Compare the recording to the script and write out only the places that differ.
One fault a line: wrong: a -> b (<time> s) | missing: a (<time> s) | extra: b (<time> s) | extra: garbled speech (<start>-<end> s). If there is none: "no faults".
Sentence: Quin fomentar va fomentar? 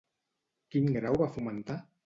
wrong: fomentar -> grau (0.9 s)